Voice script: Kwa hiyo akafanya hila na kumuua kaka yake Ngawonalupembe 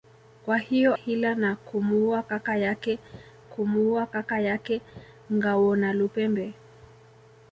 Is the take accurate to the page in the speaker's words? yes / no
no